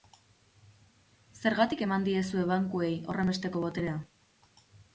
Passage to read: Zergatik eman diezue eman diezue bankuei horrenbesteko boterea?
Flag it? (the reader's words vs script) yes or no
yes